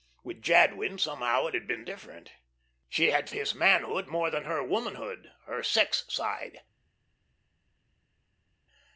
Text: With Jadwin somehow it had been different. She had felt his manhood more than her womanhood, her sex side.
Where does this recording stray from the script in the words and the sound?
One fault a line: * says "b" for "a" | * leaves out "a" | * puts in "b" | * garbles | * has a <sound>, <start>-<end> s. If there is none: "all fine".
* leaves out "felt"